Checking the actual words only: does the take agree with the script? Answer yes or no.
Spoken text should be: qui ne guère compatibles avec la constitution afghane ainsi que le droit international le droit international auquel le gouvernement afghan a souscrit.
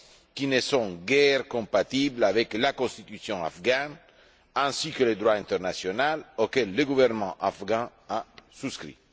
no